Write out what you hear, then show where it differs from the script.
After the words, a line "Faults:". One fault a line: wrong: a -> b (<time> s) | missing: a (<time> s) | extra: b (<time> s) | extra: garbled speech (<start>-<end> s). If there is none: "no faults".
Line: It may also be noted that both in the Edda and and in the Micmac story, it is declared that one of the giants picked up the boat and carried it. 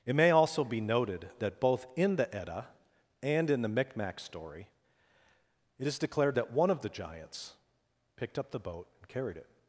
It may also be noted that both in the Edda and in the Micmac story, it is declared that one of the giants picked up the boat and carried it.
Faults:
missing: and (3.5 s)